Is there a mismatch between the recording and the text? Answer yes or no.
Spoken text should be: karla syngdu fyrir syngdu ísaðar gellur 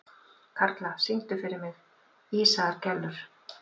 yes